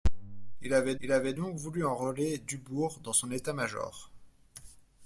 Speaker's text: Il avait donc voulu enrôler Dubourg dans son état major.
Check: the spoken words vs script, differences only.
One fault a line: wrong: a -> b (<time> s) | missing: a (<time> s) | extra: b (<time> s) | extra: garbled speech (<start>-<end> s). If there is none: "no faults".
extra: il avait (1.0 s)